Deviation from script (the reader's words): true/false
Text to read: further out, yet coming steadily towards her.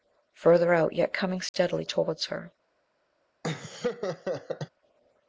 false